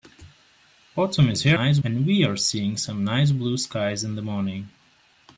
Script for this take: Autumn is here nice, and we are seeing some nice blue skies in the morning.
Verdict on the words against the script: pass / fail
pass